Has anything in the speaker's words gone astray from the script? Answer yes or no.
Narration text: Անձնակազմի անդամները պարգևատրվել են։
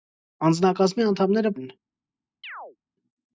yes